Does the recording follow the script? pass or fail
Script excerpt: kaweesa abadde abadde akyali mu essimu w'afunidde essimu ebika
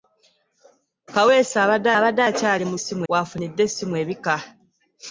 pass